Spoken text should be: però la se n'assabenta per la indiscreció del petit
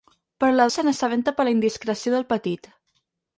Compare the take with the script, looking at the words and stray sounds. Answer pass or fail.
pass